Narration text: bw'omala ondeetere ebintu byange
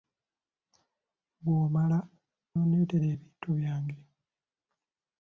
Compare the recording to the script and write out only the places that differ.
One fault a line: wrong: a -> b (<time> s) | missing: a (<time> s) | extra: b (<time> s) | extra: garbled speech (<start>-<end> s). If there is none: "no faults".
no faults